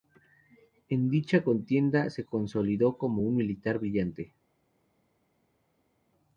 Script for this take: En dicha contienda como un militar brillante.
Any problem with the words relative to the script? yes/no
yes